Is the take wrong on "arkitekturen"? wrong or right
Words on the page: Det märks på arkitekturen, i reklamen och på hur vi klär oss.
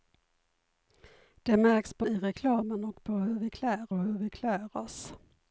wrong